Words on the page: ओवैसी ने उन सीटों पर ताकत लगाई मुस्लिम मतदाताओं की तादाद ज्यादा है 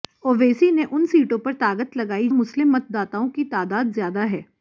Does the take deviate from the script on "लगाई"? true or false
false